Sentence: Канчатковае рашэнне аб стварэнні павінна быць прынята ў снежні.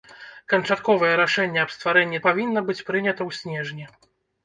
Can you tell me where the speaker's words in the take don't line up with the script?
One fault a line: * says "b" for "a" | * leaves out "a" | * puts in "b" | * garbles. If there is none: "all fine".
all fine